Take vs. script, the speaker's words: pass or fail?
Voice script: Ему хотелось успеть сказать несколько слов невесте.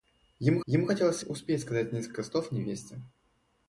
fail